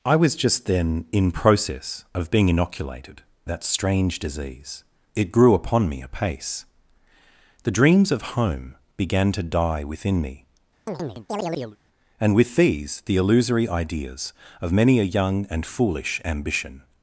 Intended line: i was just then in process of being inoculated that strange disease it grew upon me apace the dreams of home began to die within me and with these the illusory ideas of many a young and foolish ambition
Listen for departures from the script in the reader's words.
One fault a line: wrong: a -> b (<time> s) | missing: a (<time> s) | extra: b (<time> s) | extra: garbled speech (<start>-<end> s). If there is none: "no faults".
no faults